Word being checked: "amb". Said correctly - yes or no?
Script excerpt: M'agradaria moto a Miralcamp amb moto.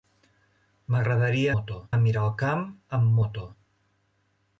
yes